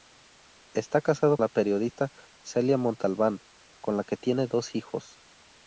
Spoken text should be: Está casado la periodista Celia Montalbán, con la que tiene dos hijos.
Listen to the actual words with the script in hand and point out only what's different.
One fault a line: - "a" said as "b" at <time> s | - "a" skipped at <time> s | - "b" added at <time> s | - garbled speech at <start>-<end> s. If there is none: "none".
none